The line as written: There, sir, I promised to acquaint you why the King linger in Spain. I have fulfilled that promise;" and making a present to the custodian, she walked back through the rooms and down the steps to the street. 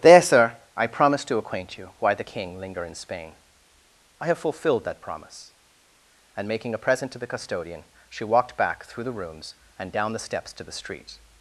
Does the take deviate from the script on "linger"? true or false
false